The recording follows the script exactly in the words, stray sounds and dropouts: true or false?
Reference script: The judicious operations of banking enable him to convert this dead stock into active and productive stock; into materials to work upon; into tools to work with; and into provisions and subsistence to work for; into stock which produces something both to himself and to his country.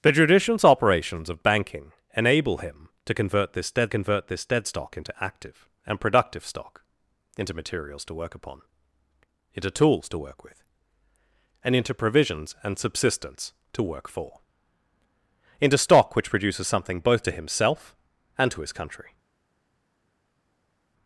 false